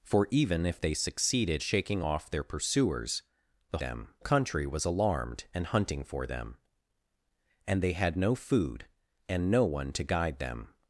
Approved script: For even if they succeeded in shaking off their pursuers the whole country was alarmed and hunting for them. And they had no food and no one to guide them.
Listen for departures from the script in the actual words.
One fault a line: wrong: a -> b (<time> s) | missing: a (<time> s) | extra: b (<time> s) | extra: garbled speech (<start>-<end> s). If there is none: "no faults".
missing: in (1.6 s)
wrong: whole -> them (3.8 s)